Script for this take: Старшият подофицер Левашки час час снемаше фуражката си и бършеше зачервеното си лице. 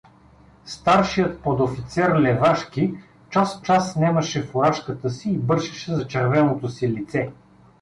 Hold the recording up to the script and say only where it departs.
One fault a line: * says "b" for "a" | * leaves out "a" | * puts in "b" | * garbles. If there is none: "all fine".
all fine